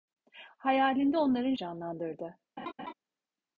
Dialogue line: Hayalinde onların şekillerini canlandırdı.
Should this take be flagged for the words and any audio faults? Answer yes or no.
yes